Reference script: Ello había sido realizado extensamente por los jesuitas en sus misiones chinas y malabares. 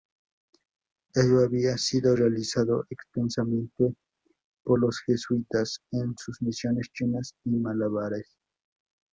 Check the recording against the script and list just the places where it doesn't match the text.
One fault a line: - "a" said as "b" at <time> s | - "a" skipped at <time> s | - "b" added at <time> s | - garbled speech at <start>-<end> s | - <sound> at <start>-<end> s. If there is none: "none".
none